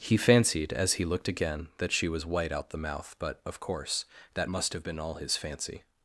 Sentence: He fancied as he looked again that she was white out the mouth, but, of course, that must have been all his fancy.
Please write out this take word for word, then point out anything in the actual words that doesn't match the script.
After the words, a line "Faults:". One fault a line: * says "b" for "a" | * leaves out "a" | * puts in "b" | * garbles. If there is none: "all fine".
He fancied as he looked again that she was white out the mouth, but, of course, that must have been all his fancy.
Faults:
all fine